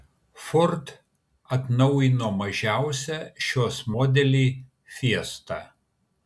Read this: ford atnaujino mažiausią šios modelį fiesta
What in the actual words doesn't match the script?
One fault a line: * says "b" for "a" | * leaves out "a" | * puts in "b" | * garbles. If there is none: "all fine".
all fine